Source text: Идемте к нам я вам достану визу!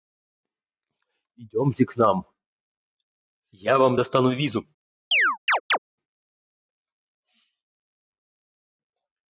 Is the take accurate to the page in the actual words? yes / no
yes